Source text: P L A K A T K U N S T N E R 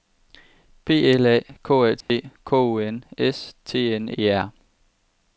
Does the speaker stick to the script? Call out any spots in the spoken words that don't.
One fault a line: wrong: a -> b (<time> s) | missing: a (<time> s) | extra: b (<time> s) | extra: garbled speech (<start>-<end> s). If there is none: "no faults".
no faults